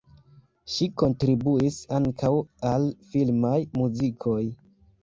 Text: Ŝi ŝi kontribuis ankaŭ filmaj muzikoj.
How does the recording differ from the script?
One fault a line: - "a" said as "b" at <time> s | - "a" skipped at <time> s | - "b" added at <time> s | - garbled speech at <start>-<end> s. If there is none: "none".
- "ŝi" skipped at 0.9 s
- "al" added at 2.7 s